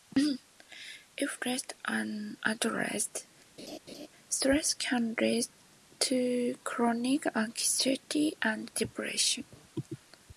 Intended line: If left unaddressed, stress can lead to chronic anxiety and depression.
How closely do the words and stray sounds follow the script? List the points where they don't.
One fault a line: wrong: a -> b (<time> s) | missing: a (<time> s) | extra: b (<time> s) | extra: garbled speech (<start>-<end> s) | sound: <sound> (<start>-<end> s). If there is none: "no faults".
sound: laugh (3.6-4.1 s)